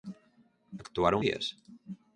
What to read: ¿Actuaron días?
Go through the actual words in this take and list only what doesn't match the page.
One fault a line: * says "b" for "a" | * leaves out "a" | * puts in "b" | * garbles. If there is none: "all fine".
all fine